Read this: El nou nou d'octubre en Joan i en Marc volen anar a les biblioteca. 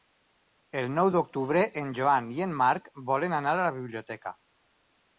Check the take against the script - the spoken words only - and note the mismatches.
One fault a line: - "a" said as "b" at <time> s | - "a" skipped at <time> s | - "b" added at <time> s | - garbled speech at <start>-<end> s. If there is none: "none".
- "nou" skipped at 1.1 s
- "les" said as "la" at 3.6 s